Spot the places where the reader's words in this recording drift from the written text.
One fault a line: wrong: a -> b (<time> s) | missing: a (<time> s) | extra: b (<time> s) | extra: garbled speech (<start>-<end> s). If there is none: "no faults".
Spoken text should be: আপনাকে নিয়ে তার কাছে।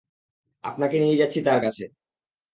extra: যাচ্ছি (1.2 s)